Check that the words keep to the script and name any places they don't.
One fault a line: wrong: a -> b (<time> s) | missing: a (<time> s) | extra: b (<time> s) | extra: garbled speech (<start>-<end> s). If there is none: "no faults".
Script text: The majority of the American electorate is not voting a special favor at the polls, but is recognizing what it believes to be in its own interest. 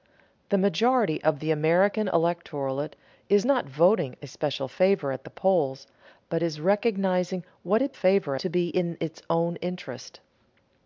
wrong: believes -> favor (7.9 s)